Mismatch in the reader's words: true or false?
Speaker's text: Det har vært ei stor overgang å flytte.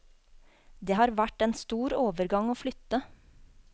true